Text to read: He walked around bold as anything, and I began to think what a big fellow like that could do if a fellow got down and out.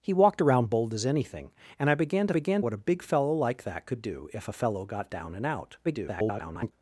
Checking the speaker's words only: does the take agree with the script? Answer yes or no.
no